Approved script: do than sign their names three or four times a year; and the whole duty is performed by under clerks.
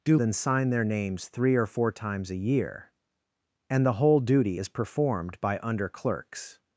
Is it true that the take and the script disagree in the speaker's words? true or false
false